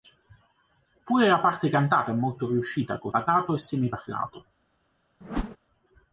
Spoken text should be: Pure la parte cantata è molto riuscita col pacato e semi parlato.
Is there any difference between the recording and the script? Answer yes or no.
no